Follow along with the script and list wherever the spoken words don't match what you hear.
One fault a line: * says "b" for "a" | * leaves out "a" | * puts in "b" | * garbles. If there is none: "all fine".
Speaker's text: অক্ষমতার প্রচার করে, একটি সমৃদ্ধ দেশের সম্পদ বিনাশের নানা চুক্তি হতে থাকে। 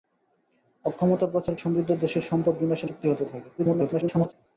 * leaves out "করে একটি"
* leaves out "নানা"
* garbles